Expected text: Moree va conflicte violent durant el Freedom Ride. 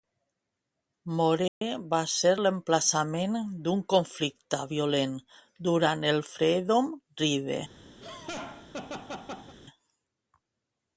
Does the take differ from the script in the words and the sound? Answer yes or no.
yes